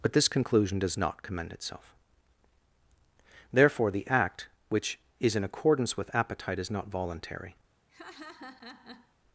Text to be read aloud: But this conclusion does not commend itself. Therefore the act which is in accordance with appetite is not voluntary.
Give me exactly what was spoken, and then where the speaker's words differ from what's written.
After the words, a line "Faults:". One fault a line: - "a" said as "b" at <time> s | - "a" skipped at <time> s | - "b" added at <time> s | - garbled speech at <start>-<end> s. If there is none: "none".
But this conclusion does not commend itself. Therefore the act which is in accordance with appetite is not voluntary.
Faults:
none